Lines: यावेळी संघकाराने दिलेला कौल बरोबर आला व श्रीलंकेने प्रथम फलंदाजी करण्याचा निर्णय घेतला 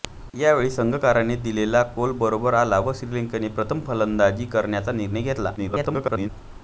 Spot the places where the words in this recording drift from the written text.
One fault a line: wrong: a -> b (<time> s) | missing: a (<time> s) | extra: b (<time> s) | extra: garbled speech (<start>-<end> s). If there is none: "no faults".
extra: garbled speech (5.6-6.3 s)